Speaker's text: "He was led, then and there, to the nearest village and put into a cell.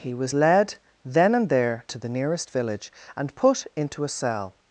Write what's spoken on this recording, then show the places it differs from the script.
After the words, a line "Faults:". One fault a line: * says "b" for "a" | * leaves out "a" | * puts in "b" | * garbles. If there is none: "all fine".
"He was led, then and there, to the nearest village and put into a cell.
Faults:
all fine